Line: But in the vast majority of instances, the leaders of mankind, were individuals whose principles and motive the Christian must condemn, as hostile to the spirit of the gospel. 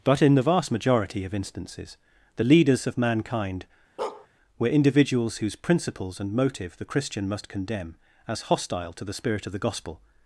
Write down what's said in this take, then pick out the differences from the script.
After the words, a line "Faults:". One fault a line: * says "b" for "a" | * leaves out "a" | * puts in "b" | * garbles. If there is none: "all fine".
But in the vast majority of instances, the leaders of mankind, were individuals whose principles and motive the Christian must condemn, as hostile to the spirit of the gospel.
Faults:
all fine